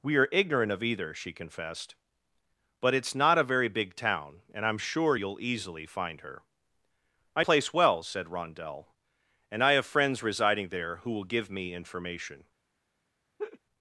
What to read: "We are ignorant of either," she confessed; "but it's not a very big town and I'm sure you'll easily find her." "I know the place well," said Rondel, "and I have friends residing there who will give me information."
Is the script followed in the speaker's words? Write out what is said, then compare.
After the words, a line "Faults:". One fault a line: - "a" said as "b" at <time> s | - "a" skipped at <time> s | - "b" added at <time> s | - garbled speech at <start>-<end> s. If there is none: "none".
"We are ignorant of either," she confessed; "but it's not a very big town and I'm sure you'll easily find her." "I place well," said Rondel, "and I have friends residing there who will give me information."
Faults:
- "know the" skipped at 7.4 s